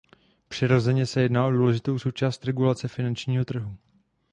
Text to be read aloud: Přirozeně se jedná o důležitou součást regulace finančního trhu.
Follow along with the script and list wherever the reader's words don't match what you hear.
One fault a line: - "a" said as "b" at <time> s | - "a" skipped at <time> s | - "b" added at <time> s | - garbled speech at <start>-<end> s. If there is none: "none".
none